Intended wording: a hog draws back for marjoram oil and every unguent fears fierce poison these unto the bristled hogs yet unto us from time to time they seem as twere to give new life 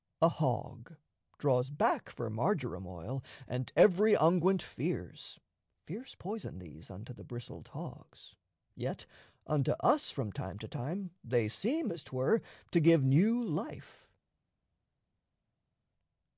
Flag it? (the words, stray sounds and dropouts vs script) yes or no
no